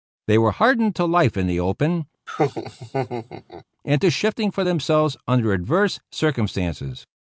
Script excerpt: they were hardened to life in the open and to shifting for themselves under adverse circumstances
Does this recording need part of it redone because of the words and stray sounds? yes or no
yes